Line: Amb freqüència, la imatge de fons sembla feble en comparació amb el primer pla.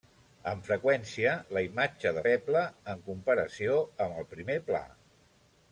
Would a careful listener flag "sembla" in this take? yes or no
yes